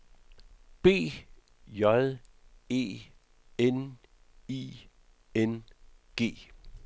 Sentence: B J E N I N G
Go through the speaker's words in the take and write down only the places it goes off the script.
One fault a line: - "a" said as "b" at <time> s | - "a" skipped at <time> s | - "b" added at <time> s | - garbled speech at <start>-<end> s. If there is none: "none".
none